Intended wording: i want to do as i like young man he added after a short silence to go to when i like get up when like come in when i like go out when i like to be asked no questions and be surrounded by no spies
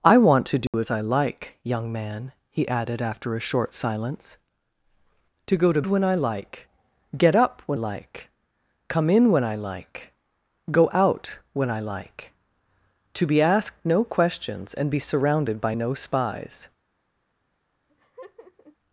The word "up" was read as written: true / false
true